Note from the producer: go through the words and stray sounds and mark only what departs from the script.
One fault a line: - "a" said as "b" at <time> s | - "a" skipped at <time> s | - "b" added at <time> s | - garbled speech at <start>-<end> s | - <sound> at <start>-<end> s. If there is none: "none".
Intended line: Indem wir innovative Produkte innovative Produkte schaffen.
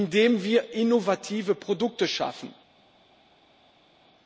- "innovative Produkte" skipped at 2.1 s